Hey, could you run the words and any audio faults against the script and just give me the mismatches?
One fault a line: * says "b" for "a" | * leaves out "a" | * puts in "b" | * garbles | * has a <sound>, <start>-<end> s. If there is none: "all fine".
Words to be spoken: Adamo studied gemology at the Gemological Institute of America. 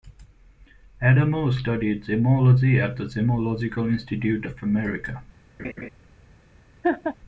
* has a laugh, 5.6-5.9 s
* has a laugh, 6.8-7.2 s